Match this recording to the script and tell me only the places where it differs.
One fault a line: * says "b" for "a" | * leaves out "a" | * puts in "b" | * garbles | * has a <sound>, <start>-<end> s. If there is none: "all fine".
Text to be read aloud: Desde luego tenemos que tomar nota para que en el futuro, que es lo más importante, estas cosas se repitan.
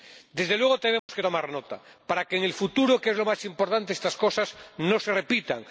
* has a dropout, 1.0-1.1 s
* puts in "no"